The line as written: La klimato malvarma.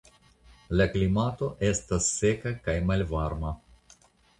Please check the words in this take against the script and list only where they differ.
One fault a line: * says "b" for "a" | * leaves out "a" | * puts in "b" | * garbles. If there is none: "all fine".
* puts in "estas seka kaj"